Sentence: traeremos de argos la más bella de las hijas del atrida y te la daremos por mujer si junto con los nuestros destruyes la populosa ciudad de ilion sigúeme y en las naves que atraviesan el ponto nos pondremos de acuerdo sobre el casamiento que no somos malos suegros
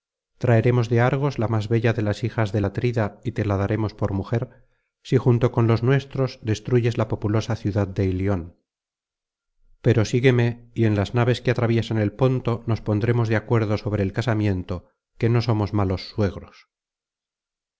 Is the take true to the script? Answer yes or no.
no